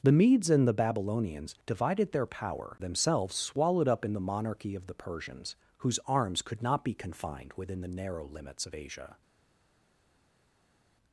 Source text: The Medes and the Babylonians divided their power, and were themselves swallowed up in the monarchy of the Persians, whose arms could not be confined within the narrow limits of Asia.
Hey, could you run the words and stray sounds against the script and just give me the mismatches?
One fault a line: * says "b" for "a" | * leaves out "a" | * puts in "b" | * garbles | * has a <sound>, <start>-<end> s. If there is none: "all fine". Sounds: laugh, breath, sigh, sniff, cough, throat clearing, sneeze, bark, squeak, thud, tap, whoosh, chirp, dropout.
* leaves out "and were"